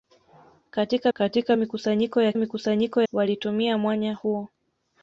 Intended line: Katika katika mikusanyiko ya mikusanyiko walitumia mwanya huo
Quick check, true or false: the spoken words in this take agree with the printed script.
true